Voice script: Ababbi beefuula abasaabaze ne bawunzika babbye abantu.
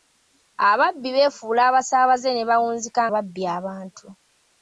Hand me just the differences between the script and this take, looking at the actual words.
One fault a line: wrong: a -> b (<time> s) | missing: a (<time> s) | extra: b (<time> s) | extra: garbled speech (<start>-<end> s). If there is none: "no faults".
no faults